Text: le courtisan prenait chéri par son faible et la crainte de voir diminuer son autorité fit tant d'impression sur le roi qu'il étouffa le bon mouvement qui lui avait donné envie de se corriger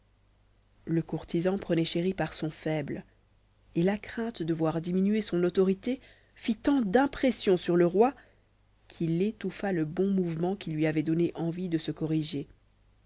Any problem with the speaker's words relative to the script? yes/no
no